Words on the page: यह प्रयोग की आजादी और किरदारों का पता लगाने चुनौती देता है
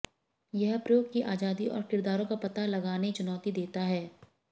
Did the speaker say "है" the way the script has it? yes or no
yes